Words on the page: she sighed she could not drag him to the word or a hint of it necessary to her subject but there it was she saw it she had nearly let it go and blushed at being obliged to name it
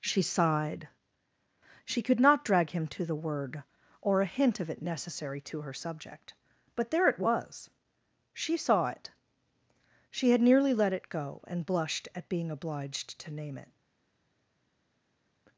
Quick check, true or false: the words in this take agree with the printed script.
true